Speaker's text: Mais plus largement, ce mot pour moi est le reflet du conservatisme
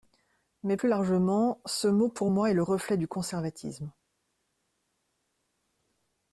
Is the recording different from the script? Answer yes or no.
no